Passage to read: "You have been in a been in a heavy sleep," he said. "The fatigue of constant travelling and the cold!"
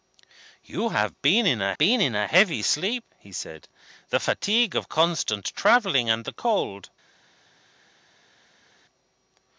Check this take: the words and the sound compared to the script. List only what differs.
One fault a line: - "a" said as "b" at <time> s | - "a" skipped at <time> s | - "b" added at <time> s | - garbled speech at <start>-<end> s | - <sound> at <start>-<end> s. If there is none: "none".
none